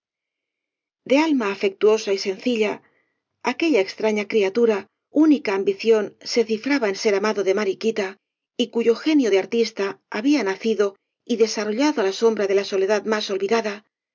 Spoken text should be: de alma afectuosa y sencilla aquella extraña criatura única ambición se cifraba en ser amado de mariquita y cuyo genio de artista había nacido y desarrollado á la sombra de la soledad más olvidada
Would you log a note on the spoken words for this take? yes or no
no